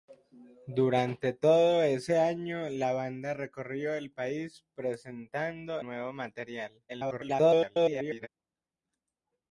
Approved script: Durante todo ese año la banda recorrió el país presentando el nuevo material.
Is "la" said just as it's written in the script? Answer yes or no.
yes